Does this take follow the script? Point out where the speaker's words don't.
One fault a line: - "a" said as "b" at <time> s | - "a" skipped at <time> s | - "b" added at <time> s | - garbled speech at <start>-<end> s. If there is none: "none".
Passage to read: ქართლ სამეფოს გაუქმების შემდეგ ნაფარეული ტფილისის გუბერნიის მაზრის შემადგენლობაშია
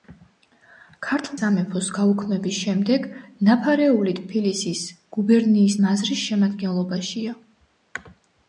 none